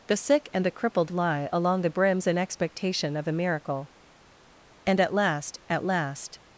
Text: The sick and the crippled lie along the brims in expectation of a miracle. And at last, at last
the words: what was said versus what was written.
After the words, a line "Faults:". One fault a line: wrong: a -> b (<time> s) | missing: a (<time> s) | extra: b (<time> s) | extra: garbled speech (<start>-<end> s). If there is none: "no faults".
The sick and the crippled lie along the brims in expectation of a miracle. And at last, at last
Faults:
no faults